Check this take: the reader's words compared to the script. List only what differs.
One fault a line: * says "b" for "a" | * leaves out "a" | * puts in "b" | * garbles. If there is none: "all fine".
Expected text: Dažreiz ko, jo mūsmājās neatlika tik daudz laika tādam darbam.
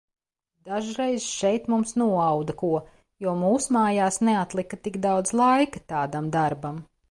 * puts in "šeit mums noauda"